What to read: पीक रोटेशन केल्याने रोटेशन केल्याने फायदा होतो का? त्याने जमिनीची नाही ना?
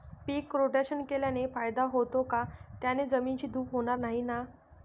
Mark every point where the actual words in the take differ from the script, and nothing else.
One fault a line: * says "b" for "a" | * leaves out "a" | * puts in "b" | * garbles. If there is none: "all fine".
* leaves out "रोटेशन केल्याने"
* puts in "धूप होणार"